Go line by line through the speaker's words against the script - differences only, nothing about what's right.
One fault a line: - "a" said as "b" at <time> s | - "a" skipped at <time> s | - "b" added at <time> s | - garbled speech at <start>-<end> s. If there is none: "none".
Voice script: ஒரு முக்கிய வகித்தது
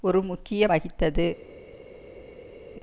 none